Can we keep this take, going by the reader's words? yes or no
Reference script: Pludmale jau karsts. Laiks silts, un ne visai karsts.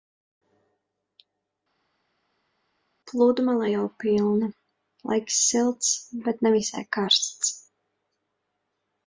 no